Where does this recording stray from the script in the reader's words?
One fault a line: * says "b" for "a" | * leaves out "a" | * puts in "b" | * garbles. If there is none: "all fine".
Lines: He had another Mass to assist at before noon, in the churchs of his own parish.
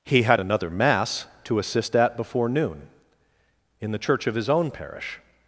* says "church" for "churchs"